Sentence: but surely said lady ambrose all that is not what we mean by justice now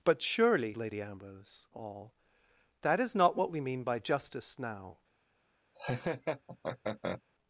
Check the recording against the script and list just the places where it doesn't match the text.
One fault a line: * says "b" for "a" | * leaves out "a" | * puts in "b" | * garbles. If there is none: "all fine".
* leaves out "said"